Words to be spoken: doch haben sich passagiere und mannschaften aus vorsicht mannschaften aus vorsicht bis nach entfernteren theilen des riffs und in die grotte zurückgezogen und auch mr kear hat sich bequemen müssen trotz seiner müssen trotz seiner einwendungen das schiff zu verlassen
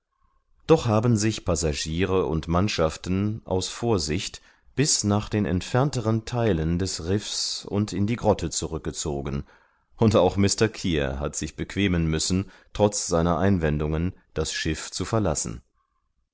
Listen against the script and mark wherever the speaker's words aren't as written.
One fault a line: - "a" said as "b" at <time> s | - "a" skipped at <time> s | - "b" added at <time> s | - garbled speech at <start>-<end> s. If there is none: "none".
- "mannschaften aus vorsicht" skipped at 4.4 s
- "den" added at 5.3 s
- "müssen trotz seiner" skipped at 13.4 s